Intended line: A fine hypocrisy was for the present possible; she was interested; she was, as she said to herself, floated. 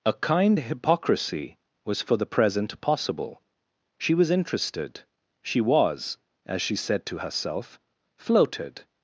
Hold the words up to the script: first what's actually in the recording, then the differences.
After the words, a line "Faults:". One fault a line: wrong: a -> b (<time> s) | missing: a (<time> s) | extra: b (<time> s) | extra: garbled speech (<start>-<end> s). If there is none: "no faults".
A kind hypocrisy was for the present possible; she was interested; she was, as she said to herself, floated.
Faults:
wrong: fine -> kind (0.1 s)